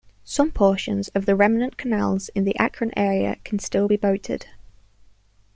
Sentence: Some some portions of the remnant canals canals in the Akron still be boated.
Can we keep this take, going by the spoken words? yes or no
no